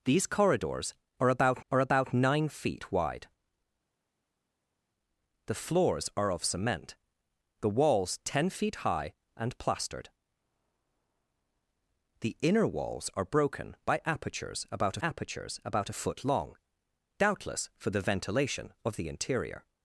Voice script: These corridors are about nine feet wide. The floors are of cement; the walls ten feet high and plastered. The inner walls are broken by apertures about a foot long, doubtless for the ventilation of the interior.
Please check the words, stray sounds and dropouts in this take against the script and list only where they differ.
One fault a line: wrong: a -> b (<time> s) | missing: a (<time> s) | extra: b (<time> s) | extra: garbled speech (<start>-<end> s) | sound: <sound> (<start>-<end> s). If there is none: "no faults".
extra: are about (1.7 s)
extra: apertures about (15.0 s)